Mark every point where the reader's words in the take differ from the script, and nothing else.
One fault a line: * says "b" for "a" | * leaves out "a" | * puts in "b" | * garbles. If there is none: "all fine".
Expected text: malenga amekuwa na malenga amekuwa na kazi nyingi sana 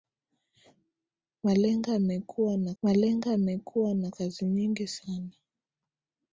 all fine